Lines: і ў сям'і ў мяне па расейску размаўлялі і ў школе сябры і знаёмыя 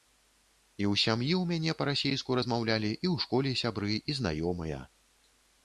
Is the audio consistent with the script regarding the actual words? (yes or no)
yes